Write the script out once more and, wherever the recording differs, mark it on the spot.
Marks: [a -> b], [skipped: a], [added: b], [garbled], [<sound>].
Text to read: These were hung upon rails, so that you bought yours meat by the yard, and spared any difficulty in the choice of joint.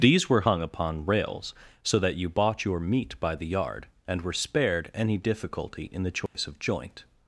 These were hung upon rails, so that you bought [yours -> your] meat by the yard, and [added: were] spared any difficulty in the choice [dropout] of joint.